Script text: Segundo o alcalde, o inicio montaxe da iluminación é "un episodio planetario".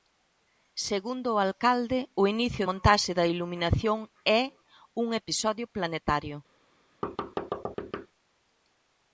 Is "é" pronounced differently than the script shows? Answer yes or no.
no